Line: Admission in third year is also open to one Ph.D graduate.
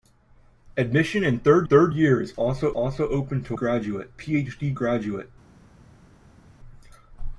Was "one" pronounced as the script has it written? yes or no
no